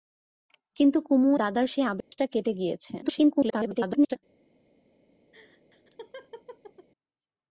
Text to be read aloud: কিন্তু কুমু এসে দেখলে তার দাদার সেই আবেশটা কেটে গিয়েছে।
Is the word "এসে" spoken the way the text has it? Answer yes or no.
no